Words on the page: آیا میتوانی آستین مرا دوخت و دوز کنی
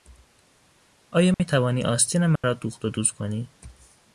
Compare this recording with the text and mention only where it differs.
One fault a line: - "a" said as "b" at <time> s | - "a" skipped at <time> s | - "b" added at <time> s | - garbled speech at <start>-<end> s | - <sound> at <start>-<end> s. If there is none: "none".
- dropout at 1.3-1.4 s
- dropout at 2.4-2.4 s